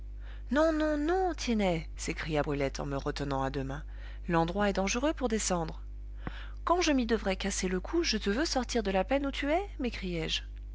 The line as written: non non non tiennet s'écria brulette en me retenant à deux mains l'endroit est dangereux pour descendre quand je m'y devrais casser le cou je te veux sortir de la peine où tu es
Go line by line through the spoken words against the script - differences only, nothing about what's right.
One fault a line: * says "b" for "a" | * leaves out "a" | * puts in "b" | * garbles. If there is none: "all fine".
all fine